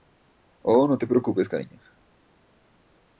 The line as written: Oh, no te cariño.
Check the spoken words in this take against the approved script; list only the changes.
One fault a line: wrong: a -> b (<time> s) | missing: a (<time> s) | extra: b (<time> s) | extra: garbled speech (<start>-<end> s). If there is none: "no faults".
extra: preocupes (1.1 s)